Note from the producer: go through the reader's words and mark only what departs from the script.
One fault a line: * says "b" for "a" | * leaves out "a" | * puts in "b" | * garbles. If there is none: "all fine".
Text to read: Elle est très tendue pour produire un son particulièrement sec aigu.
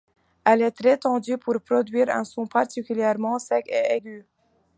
* puts in "et"